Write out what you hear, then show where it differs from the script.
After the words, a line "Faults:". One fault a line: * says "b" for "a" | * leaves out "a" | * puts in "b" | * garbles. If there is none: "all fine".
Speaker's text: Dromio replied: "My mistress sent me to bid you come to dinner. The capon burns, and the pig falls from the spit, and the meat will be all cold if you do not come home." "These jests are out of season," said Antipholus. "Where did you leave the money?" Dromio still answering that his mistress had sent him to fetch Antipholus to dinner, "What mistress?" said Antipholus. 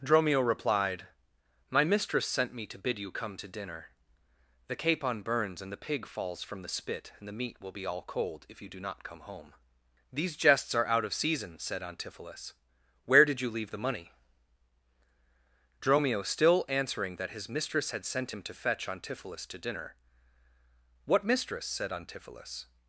Dromio replied: "My mistress sent me to bid you come to dinner. The capon burns, and the pig falls from the spit, and the meat will be all cold if you do not come home." "These jests are out of season," said Antipholus. "Where did you leave the money?" Dromio still answering that his mistress had sent him to fetch Antipholus to dinner, "What mistress?" said Antipholus.
Faults:
all fine